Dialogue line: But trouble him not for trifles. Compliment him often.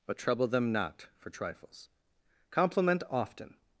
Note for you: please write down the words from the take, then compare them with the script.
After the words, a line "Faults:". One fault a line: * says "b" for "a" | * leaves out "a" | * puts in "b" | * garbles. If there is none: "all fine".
But trouble them not for trifles. Compliment often.
Faults:
* says "them" for "him"
* leaves out "him"